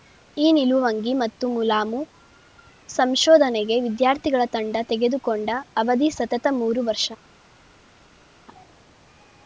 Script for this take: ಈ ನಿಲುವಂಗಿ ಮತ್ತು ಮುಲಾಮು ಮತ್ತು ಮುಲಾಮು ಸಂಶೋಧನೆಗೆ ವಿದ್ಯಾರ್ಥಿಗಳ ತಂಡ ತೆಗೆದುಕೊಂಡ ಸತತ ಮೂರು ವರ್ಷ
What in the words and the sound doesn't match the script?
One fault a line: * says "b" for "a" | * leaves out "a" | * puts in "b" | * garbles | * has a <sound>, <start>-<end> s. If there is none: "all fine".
* leaves out "ಮತ್ತು ಮುಲಾಮು"
* puts in "ಅವಧಿ"